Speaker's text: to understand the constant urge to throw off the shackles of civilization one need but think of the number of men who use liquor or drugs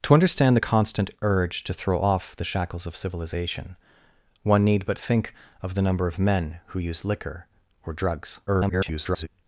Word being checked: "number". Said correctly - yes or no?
yes